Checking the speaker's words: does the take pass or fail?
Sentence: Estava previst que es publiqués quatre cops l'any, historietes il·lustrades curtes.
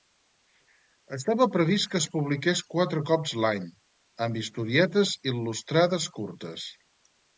fail